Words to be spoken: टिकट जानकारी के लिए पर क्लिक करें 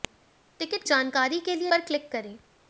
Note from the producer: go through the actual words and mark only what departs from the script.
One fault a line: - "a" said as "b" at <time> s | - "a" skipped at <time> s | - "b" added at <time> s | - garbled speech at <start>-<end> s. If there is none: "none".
none